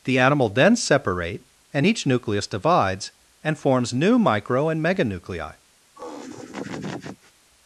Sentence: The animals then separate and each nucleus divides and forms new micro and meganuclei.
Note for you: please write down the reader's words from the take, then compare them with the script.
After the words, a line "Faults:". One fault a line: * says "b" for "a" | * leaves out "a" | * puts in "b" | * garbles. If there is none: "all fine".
The animal then separate and each nucleus divides and forms new micro and meganuclei.
Faults:
* says "animal" for "animals"